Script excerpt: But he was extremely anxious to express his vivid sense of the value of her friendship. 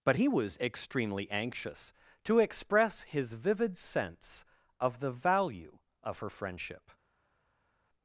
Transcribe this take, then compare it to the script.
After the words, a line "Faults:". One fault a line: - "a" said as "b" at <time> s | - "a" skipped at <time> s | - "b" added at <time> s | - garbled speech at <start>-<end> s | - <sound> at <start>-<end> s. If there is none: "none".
But he was extremely anxious to express his vivid sense of the value of her friendship.
Faults:
none